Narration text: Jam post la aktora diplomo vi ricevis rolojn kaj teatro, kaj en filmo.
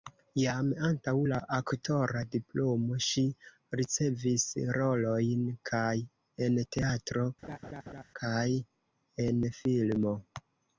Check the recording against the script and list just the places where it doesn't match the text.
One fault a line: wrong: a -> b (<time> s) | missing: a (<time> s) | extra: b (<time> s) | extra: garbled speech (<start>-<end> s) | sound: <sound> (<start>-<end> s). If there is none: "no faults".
wrong: post -> antaŭ (0.8 s)
wrong: vi -> ŝi (3.1 s)
extra: en (6.5 s)
sound: laugh (7.4-8.0 s)